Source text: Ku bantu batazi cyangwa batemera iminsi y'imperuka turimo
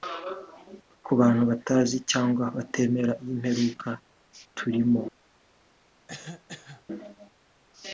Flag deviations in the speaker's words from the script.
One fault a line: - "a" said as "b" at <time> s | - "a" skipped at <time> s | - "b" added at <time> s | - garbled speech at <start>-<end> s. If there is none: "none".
- "iminsi" skipped at 3.1 s